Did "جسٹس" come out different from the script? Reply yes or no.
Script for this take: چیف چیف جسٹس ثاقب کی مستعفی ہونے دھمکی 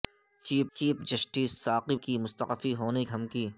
no